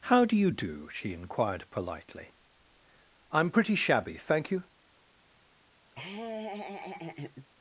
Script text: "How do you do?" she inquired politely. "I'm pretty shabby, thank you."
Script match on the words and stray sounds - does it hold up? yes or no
no